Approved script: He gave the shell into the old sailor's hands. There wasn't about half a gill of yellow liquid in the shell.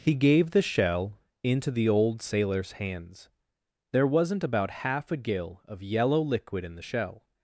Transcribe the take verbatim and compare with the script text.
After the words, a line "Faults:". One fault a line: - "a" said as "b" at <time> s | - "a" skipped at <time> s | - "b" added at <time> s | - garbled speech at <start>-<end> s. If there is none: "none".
He gave the shell into the old sailor's hands. There wasn't about half a gill of yellow liquid in the shell.
Faults:
none